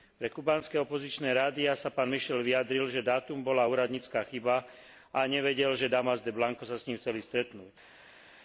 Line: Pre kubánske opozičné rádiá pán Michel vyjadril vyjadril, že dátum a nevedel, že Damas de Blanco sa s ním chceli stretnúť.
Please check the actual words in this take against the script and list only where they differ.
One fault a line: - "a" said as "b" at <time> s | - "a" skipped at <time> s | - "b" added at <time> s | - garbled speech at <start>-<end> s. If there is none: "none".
- "sa" added at 1.7 s
- "vyjadril" skipped at 2.9 s
- "bola úradnícka chyba" added at 3.4 s